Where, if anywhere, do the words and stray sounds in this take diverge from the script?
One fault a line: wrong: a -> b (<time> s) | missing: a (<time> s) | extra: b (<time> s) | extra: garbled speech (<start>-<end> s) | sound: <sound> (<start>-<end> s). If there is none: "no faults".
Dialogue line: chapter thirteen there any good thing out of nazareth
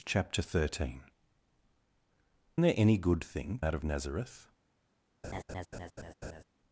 sound: laugh (5.2-6.4 s)